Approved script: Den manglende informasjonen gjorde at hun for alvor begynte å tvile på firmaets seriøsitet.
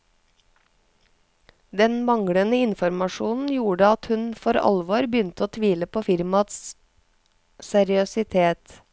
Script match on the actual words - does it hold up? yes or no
yes